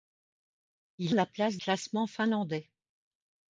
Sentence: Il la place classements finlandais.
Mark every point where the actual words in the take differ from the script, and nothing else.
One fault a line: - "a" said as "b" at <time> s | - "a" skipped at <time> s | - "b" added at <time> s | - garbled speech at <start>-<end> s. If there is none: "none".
none